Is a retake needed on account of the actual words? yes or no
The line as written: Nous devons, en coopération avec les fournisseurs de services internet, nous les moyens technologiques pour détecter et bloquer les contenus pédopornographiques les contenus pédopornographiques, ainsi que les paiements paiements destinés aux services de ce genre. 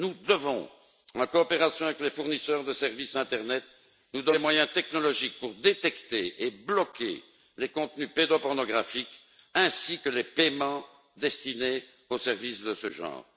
yes